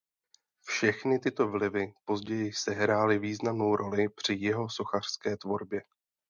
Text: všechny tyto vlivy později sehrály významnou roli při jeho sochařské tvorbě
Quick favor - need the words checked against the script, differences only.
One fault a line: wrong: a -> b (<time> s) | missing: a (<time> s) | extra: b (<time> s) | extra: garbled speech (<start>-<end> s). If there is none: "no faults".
no faults